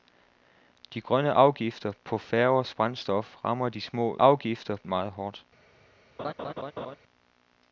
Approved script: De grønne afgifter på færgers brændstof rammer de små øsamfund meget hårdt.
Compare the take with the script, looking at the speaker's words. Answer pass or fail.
fail